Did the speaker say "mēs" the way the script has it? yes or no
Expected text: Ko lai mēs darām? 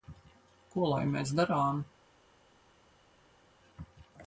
yes